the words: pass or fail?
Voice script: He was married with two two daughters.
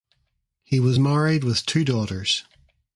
fail